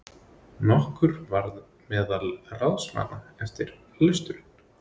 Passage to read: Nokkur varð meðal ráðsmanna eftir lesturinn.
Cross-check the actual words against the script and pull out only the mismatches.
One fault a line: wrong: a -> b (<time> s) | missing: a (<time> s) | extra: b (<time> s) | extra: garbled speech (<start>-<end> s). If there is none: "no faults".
no faults